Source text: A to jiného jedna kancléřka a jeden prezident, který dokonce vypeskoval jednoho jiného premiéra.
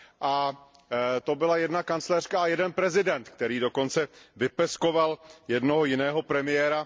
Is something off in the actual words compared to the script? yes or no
yes